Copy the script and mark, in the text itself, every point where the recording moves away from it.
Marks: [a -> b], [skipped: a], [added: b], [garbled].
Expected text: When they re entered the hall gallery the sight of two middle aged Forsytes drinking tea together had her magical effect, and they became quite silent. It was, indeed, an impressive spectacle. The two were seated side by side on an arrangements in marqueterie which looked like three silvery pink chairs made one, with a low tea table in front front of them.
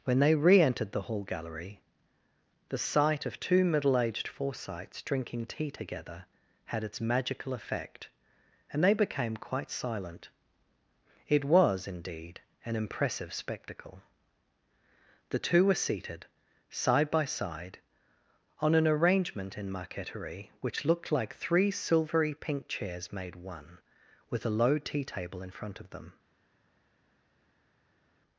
When they re entered the hall gallery the sight of two middle aged Forsytes drinking tea together had [her -> its] magical effect, and they became quite silent. It was, indeed, an impressive spectacle. The two were seated side by side on an [arrangements -> arrangement] in marqueterie which looked like three silvery pink chairs made one, with a low tea table in front [skipped: front] of them.